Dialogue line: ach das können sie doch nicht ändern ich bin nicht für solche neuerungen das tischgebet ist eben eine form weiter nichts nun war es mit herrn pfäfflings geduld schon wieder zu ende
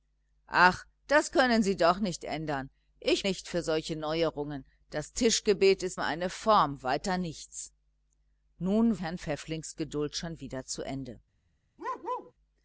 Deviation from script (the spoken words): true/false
true